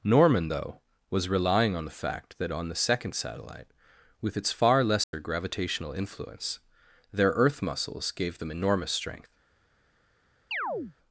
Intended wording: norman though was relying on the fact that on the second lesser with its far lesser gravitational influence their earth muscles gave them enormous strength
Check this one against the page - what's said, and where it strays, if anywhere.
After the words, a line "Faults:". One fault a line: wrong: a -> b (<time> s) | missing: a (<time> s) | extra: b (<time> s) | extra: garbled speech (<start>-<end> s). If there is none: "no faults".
norman though was relying on the fact that on the second satellite with its far lesser gravitational influence their earth muscles gave them enormous strength
Faults:
wrong: lesser -> satellite (3.1 s)